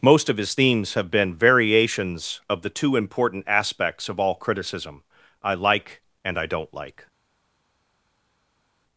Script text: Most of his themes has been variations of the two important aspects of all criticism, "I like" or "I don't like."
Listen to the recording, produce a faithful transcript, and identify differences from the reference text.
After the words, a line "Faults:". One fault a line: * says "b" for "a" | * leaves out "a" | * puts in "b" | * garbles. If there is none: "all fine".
Most of his themes have been variations of the two important aspects of all criticism, "I like" and "I don't like."
Faults:
* says "have" for "has"
* says "and" for "or"